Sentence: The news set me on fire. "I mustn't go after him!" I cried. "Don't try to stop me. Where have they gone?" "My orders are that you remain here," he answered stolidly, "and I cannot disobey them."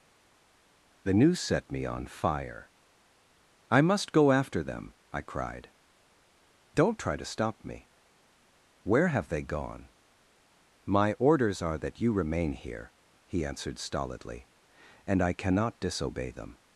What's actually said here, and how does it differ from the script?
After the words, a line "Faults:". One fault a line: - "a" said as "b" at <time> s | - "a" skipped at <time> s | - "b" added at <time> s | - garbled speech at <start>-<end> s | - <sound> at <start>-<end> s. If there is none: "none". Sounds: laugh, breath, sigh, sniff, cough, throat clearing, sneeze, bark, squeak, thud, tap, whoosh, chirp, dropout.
The news set me on fire. "I must go after them!" I cried. "Don't try to stop me. Where have they gone?" "My orders are that you remain here," he answered stolidly, "and I cannot disobey them."
Faults:
- "mustn't" said as "must" at 3.8 s
- "him" said as "them" at 4.6 s